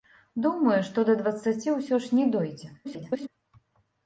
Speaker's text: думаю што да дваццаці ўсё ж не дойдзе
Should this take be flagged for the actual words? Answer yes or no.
yes